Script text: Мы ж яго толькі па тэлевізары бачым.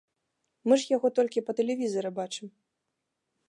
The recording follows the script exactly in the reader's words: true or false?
true